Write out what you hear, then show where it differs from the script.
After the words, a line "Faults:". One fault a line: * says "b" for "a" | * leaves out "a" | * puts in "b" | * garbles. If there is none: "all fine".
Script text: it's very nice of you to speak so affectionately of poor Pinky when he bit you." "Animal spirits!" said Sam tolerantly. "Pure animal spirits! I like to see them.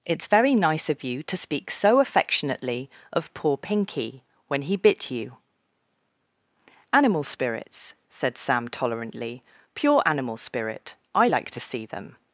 it's very nice of you to speak so affectionately of poor Pinky when he bit you." "Animal spirits!" said Sam tolerantly. "Pure animal spirit! I like to see them.
Faults:
* says "spirit" for "spirits"